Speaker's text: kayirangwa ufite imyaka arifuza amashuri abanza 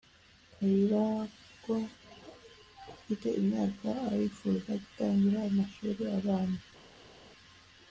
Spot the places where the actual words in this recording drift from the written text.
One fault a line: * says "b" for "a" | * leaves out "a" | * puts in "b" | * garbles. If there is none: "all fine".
* puts in "gutangira"